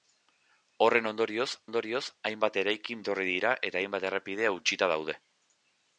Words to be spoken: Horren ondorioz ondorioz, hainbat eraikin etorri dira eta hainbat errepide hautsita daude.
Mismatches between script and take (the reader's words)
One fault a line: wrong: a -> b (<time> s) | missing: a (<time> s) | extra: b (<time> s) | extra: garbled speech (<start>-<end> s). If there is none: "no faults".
no faults